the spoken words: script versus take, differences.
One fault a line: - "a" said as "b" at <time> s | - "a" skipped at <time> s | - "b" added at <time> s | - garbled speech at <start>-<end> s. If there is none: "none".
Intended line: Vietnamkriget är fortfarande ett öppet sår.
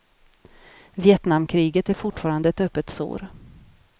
none